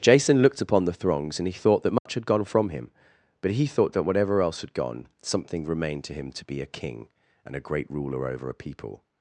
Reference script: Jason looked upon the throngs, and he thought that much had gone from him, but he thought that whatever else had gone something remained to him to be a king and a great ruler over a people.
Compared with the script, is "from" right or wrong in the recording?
right